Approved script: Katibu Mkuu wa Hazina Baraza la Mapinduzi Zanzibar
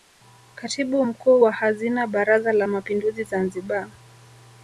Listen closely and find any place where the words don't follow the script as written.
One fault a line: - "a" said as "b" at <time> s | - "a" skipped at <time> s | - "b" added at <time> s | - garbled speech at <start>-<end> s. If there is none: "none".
none